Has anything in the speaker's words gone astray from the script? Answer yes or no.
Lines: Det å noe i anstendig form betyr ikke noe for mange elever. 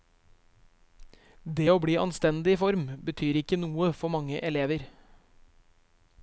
yes